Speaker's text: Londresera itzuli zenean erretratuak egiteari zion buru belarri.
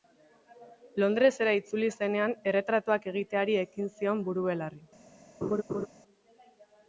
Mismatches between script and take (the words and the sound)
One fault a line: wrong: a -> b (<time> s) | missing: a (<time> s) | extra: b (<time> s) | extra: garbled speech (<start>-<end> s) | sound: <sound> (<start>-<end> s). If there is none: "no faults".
extra: ekin (3.7 s)
sound: laugh (5.4-5.9 s)